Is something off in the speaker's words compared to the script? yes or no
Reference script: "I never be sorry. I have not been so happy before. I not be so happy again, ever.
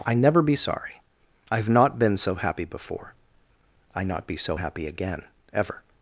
no